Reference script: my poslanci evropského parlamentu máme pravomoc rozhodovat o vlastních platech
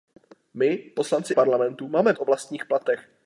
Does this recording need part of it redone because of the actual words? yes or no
yes